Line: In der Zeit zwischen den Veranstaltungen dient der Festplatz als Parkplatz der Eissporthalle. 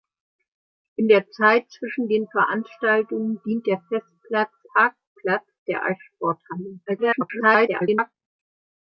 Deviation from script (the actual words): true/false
true